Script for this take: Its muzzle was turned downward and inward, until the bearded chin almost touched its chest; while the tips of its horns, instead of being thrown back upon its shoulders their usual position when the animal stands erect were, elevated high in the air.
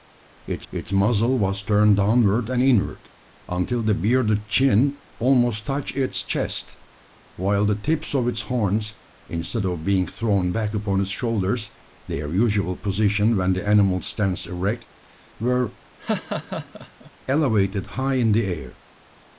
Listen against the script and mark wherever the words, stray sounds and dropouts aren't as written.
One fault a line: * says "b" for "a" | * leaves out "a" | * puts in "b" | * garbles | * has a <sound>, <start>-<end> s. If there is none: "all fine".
* puts in "its"
* has a laugh, 16.0-17.1 s